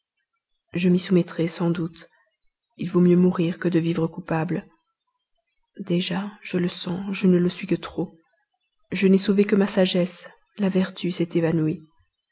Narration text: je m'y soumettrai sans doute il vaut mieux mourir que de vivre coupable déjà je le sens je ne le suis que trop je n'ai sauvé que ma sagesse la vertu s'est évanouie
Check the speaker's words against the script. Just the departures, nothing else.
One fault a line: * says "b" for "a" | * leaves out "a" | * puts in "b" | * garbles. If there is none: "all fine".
all fine